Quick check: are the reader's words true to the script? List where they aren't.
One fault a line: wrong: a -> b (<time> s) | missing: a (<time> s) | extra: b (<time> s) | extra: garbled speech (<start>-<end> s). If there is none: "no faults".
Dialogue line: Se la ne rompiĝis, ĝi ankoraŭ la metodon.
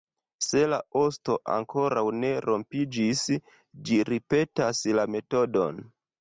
extra: osto ankoraŭ (1.0 s)
wrong: ankoraŭ -> ripetas (4.1 s)